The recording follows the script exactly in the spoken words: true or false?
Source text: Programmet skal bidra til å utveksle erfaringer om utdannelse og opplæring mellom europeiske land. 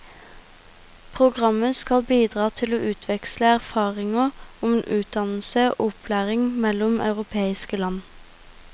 true